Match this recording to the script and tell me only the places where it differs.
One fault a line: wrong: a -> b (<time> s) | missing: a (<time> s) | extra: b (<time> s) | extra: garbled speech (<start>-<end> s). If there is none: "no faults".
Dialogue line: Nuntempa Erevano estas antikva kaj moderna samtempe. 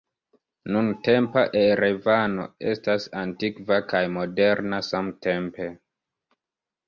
no faults